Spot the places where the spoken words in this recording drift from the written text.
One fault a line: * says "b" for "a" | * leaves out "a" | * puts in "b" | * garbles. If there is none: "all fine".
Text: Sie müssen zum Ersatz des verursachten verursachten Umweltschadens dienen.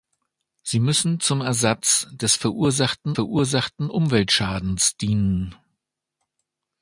all fine